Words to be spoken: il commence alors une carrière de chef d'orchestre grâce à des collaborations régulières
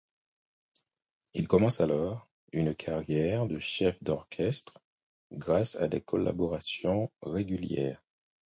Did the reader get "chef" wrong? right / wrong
right